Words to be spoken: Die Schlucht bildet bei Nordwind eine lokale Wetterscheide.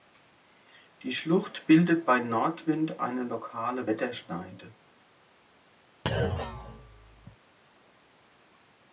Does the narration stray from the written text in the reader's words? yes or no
no